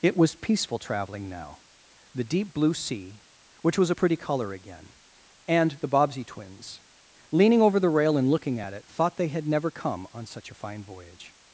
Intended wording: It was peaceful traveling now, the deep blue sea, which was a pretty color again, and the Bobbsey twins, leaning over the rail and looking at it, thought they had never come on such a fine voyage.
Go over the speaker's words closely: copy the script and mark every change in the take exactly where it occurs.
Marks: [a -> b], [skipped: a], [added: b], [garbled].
It was peaceful traveling now, the deep blue sea, which was a pretty color again, and the Bobbsey twins, leaning over the rail and looking at it, thought they had never come on such a fine voyage.